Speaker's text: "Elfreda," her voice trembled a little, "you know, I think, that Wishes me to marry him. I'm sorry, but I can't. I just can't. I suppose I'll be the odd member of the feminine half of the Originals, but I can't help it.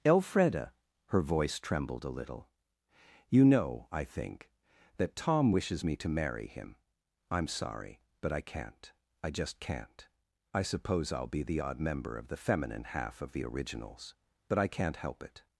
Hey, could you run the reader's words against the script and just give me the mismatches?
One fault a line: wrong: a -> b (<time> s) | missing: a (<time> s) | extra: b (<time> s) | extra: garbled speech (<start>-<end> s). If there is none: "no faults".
extra: Tom (5.2 s)